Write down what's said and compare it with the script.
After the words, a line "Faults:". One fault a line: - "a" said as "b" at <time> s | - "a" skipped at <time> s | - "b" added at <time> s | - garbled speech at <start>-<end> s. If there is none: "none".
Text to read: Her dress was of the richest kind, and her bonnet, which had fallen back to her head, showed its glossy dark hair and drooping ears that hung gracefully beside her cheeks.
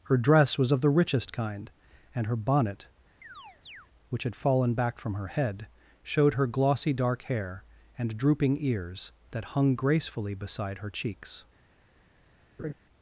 Her dress was of the richest kind, and her bonnet, which had fallen back from her head, showed her glossy dark hair and drooping ears that hung gracefully beside her cheeks.
Faults:
- "to" said as "from" at 5.0 s
- "its" said as "her" at 6.3 s